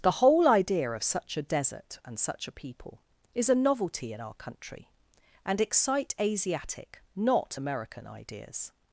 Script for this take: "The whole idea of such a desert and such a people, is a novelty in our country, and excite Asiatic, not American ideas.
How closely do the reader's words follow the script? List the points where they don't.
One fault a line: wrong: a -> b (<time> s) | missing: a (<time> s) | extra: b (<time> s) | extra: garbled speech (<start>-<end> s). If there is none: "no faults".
no faults